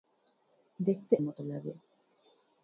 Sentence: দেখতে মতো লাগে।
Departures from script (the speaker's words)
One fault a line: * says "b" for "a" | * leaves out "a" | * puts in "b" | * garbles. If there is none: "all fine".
all fine